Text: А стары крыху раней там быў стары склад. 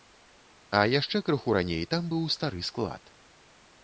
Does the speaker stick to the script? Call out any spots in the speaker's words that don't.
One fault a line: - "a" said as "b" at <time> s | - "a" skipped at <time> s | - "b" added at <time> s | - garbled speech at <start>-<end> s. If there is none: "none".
- "стары" said as "яшчэ" at 1.0 s